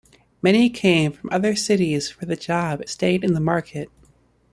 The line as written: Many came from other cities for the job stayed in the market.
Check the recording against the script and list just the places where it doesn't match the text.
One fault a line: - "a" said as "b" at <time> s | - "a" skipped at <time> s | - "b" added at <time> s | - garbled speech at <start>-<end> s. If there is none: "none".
none